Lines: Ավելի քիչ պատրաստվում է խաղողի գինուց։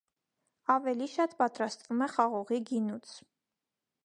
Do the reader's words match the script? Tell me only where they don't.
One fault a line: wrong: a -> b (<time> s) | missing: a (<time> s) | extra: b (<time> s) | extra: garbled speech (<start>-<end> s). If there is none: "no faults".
wrong: քիչ -> շատ (1.2 s)